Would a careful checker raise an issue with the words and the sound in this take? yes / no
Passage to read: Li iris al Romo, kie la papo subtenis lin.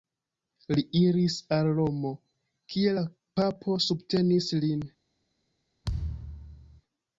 yes